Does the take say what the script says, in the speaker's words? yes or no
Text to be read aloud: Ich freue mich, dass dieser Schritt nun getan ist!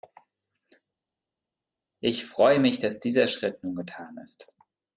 yes